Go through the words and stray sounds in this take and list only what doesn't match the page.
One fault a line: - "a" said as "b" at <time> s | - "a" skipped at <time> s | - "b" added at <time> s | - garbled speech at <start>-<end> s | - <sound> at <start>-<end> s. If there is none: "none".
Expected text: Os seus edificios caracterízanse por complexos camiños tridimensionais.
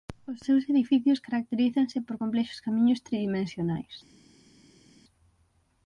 none